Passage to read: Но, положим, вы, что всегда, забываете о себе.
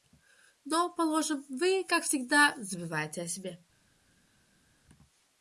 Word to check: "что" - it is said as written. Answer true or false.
false